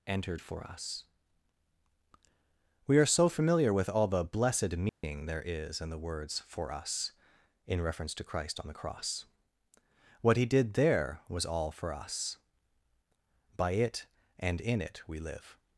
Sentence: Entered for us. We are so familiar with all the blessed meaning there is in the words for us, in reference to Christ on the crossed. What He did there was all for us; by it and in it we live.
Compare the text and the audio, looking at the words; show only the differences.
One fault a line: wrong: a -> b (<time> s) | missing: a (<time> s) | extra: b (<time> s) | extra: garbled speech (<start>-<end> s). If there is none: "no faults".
wrong: crossed -> cross (8.7 s)